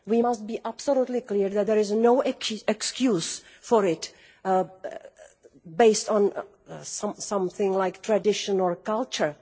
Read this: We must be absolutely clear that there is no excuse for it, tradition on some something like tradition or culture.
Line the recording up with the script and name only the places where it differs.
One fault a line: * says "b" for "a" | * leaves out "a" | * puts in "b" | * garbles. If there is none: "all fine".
* says "based" for "tradition"